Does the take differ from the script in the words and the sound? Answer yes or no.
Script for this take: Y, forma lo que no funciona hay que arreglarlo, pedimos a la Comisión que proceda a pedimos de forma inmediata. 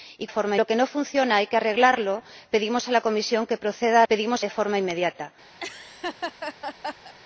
yes